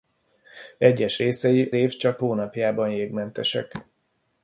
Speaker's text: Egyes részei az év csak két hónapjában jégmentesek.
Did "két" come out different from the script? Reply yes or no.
yes